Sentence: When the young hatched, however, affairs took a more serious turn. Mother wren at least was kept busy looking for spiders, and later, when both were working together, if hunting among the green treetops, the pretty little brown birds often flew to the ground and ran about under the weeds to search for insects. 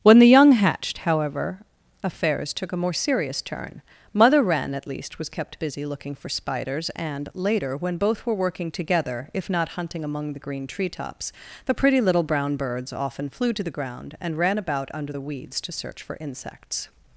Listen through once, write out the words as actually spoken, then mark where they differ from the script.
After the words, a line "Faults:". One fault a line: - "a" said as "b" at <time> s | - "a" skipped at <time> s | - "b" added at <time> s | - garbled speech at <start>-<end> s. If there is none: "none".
When the young hatched, however, affairs took a more serious turn. Mother wren at least was kept busy looking for spiders, and later, when both were working together, if not hunting among the green treetops, the pretty little brown birds often flew to the ground and ran about under the weeds to search for insects.
Faults:
- "not" added at 9.5 s